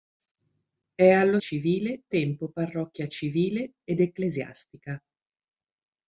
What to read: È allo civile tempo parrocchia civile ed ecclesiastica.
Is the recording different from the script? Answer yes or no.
no